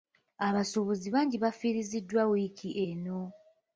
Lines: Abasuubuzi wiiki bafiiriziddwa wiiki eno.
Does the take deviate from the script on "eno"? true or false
false